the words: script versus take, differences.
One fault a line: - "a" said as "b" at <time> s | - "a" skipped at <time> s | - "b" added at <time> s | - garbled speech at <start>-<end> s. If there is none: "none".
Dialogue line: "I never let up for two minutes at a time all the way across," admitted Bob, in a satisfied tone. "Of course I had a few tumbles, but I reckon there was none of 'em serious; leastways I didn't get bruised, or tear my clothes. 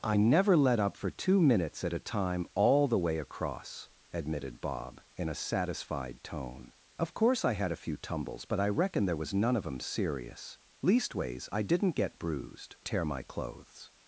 - "or" skipped at 12.8 s